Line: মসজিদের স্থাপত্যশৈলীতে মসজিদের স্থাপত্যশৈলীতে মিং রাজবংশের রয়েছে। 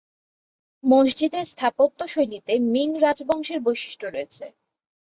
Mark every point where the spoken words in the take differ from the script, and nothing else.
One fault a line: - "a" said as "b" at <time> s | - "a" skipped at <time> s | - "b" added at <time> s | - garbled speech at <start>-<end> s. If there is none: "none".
- "মসজিদের স্থাপত্যশৈলীতে" skipped at 2.5 s
- "বৈশিষ্ট্য" added at 3.6 s